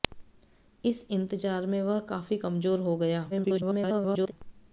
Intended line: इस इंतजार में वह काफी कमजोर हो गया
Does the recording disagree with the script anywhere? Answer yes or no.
yes